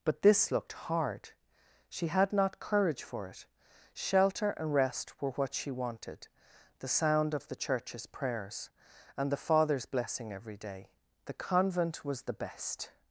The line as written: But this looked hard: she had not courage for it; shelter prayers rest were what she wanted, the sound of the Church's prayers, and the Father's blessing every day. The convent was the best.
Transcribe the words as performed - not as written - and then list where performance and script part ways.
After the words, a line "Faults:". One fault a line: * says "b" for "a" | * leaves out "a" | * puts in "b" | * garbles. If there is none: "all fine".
But this looked hard: she had not courage for it; shelter and rest were what she wanted, the sound of the Church's prayers, and the Father's blessing every day. The convent was the best.
Faults:
* says "and" for "prayers"